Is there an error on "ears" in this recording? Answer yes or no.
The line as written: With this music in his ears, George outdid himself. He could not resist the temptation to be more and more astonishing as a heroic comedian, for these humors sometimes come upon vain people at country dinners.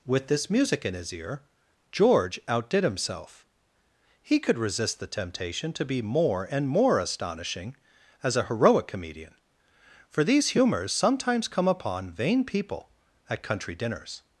yes